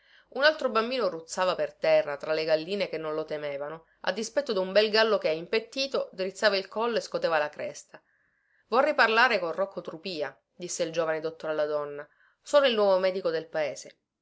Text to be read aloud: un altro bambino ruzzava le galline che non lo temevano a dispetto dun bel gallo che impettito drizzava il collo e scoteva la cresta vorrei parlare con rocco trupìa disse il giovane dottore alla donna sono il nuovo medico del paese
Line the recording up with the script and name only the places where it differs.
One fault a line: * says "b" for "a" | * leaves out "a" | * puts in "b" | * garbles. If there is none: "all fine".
* puts in "per terra tra"